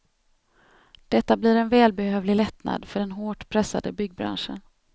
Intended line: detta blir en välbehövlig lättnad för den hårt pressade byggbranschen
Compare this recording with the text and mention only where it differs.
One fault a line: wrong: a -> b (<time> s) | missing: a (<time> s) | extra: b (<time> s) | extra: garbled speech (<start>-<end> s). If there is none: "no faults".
no faults